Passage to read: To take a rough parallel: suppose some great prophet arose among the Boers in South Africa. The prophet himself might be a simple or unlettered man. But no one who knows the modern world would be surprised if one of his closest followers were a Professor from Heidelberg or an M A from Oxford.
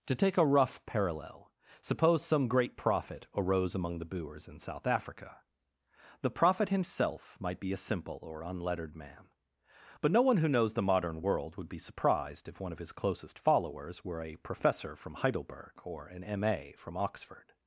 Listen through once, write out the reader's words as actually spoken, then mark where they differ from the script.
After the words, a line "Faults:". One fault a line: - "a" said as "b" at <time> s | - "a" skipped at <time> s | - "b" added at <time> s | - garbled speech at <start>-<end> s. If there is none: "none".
To take a rough parallel: suppose some great prophet arose among the Boers in South Africa. The prophet himself might be a simple or unlettered man. But no one who knows the modern world would be surprised if one of his closest followers were a Professor from Heidelberg or an M A from Oxford.
Faults:
none